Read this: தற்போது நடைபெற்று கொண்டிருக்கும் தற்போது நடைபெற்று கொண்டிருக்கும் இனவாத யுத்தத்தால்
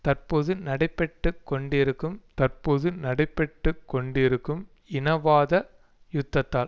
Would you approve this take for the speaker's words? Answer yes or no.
yes